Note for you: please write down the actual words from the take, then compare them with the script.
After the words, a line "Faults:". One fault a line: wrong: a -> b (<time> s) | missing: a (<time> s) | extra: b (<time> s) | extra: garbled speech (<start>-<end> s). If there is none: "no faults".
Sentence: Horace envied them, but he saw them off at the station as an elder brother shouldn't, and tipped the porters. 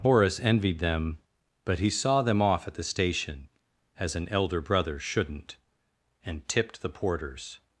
Horace envied them, but he saw them off at the station as an elder brother shouldn't, and tipped the porters.
Faults:
no faults